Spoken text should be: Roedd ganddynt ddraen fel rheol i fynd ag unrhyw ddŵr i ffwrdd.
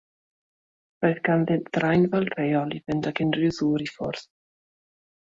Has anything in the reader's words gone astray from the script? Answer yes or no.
no